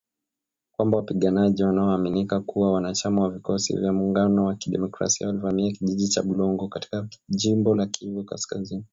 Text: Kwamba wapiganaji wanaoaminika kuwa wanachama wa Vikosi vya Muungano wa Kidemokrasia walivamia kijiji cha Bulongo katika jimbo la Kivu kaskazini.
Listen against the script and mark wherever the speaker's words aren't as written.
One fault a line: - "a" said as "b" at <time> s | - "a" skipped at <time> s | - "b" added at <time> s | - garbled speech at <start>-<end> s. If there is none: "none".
none